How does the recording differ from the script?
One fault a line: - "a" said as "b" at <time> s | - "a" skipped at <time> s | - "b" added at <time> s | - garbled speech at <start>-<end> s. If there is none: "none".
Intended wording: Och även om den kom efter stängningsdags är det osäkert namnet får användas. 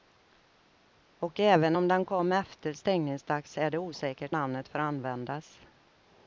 none